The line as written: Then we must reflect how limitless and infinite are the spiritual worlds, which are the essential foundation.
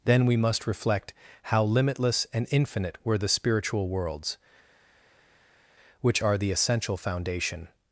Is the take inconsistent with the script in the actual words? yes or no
yes